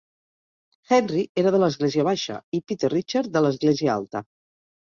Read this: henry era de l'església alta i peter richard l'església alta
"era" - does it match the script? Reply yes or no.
yes